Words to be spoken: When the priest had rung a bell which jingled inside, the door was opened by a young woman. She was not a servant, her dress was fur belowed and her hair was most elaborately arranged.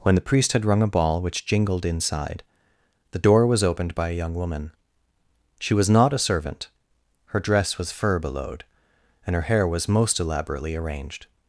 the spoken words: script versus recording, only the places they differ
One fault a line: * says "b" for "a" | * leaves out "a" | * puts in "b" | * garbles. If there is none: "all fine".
* says "ball" for "bell"